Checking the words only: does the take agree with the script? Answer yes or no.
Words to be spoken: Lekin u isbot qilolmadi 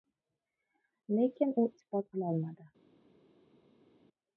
yes